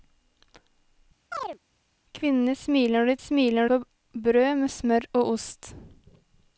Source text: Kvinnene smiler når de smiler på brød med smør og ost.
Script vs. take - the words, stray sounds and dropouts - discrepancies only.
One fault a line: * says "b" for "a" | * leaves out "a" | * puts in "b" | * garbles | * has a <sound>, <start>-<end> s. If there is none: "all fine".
* has a chirp, 1.3-1.6 s